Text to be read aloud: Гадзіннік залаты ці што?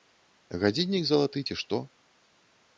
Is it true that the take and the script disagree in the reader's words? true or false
false